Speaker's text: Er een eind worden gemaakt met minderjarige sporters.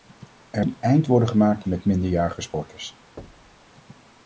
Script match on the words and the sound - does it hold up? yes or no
no